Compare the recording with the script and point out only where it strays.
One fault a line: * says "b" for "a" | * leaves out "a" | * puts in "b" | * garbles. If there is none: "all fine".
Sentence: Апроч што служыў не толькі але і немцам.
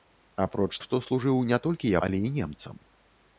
all fine